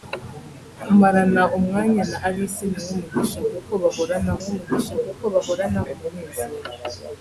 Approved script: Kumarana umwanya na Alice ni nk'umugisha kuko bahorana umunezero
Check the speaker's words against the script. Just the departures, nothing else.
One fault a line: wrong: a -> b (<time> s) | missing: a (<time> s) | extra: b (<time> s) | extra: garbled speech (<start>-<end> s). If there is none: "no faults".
extra: nk'umugisha kuko bahorana (4.4 s)